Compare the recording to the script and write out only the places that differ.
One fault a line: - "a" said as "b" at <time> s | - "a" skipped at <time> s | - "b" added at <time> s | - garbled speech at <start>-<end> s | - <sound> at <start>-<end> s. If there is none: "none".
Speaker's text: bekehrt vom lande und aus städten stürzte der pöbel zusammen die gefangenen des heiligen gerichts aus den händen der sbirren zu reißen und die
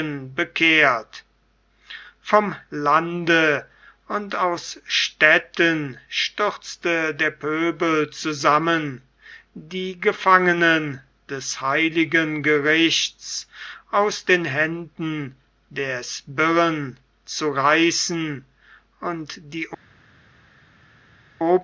none